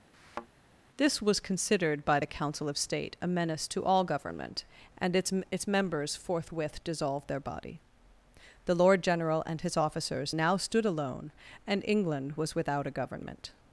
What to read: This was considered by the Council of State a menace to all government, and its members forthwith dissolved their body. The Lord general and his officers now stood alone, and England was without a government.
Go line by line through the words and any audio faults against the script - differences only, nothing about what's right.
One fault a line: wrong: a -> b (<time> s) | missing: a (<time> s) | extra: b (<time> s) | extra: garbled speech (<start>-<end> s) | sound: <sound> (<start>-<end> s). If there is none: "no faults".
sound: thud (0.1-0.5 s)
extra: its (5.5 s)